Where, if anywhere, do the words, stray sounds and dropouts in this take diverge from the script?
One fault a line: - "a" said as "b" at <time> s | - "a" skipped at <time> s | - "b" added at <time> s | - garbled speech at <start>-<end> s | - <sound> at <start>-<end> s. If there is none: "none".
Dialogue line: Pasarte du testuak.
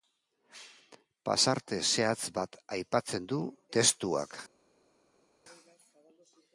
- "zehatz bat aipatzen" added at 1.9 s